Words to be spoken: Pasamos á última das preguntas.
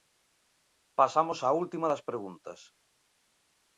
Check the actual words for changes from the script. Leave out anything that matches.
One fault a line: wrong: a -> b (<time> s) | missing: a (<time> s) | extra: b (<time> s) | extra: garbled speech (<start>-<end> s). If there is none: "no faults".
no faults